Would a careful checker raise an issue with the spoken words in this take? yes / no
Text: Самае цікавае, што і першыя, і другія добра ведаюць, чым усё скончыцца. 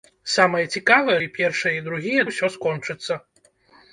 yes